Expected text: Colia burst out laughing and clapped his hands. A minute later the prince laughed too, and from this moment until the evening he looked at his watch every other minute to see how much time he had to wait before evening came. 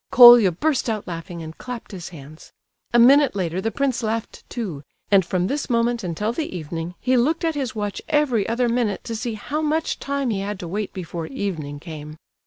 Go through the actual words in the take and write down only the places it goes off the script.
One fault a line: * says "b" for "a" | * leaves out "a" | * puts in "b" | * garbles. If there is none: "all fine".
all fine